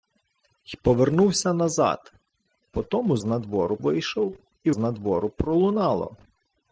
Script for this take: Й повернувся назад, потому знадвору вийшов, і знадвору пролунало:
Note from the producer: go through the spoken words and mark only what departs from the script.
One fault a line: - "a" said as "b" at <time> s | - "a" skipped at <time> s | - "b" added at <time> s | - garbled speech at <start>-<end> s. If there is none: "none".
none